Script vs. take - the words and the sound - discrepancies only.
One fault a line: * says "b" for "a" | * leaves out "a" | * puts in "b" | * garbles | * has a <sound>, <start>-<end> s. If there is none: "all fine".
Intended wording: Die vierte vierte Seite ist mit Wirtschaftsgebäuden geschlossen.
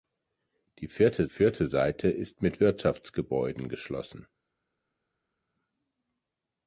all fine